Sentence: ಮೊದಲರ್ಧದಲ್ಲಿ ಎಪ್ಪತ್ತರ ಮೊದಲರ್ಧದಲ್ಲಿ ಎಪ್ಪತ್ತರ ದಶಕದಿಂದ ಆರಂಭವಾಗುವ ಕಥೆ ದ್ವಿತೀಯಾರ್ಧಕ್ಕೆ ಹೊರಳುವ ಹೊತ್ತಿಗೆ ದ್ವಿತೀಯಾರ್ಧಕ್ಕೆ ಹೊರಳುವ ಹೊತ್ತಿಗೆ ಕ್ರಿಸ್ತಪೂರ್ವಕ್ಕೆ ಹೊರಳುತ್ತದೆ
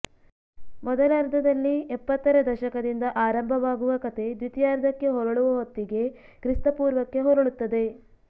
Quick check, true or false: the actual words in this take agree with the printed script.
false